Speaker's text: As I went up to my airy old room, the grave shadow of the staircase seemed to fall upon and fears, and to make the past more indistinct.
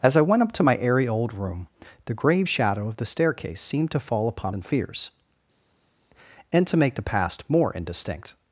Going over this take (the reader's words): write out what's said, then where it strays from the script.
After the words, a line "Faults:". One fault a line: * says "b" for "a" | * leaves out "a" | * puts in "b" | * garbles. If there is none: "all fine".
As I went up to my airy old room, the grave shadow of the staircase seemed to fall upon and fears, and to make the past more indistinct.
Faults:
all fine